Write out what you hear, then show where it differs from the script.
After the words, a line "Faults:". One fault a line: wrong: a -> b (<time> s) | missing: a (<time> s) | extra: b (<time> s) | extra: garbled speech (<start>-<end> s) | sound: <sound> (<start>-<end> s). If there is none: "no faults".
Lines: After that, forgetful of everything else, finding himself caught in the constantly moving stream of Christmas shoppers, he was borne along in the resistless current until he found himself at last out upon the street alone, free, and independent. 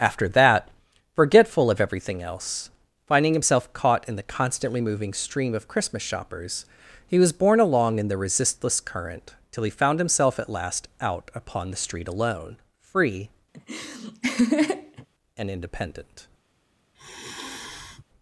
After that, forgetful of everything else, finding himself caught in the constantly moving stream of Christmas shoppers, he was borne along in the resistless current till he found himself at last out upon the street alone, free, and independent.
Faults:
wrong: until -> till (9.5 s)
sound: laugh (13.5-15.1 s)
sound: sigh (16.9-18.0 s)